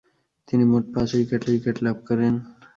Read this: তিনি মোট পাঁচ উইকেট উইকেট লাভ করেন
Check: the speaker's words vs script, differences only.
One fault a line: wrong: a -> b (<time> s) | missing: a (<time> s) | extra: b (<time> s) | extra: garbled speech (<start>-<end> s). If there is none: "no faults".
no faults